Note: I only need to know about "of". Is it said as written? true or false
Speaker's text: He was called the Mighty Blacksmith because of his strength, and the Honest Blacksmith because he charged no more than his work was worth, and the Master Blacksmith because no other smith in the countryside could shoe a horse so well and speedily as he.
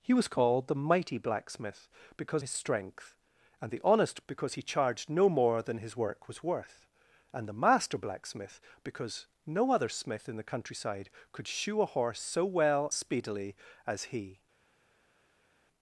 false